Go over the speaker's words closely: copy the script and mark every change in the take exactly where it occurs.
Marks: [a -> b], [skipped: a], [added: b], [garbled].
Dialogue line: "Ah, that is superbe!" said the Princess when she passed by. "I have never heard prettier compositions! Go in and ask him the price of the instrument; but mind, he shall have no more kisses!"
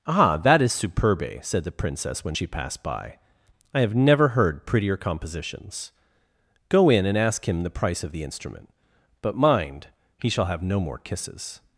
"Ah, that is superbe!" said the Princess when she passed by. "I have never heard prettier compositions! Go in and ask him the price of the instrument; but mind, he shall have no more kisses!"